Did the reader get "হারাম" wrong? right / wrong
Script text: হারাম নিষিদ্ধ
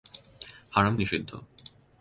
right